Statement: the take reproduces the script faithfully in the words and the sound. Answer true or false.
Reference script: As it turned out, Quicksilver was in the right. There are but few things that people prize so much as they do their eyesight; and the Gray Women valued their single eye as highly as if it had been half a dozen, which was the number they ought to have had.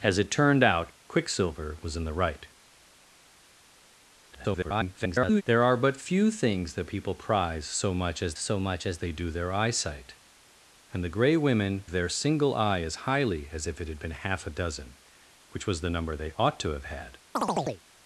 false